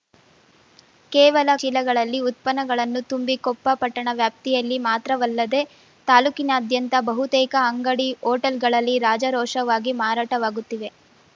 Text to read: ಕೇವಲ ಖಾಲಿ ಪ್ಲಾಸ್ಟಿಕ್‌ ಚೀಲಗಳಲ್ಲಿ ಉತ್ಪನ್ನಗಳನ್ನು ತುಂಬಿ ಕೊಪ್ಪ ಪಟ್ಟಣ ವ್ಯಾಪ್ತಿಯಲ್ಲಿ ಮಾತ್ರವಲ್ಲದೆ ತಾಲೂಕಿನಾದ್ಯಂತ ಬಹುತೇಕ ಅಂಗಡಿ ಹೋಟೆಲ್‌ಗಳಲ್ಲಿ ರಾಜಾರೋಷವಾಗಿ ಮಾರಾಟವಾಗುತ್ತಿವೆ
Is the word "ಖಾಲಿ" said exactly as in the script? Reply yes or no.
no